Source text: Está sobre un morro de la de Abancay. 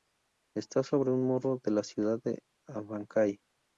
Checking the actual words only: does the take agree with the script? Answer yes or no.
no